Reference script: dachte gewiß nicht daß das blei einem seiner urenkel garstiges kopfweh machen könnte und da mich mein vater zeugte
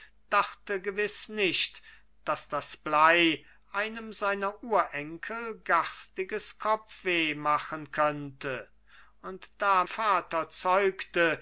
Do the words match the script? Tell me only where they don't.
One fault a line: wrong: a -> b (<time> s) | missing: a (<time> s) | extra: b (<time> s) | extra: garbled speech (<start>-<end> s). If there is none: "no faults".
missing: mich mein (9.8 s)